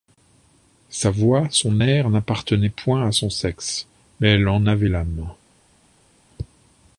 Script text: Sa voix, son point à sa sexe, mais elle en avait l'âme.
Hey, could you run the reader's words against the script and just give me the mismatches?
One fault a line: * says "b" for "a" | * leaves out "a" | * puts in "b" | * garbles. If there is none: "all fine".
* puts in "air n'appartenaient"
* says "son" for "sa"